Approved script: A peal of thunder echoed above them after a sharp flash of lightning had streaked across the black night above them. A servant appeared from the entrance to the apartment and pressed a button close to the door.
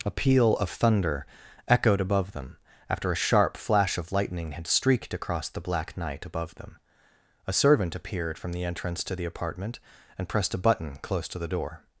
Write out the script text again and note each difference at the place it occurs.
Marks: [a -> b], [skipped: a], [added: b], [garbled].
A peal of thunder echoed above them after a sharp flash of lightning had streaked across the black night above them. A servant appeared from the entrance to the apartment and pressed a button close to the door.